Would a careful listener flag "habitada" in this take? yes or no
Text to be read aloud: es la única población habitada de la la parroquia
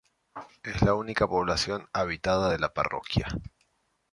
no